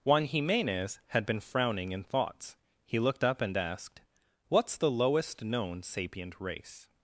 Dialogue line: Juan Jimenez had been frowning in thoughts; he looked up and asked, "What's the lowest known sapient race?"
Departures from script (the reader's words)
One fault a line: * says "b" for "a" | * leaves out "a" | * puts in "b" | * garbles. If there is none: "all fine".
all fine